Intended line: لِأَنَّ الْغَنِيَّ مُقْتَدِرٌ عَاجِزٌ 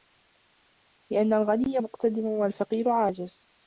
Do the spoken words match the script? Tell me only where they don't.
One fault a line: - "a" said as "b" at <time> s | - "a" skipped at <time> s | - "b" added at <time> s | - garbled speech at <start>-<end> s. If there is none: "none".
- "وَالْفَقِيرَ" added at 2.3 s